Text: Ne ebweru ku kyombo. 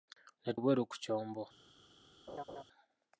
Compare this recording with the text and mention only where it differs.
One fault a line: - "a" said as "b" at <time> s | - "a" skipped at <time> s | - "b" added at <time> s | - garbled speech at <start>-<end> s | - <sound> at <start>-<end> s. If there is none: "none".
- laugh at 2.3-2.6 s